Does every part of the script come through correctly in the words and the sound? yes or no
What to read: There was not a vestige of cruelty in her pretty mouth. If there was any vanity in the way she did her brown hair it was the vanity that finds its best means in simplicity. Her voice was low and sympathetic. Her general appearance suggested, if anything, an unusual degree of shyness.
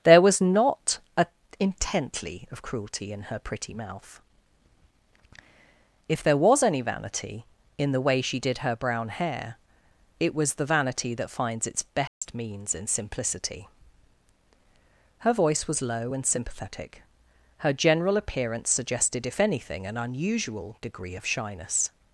no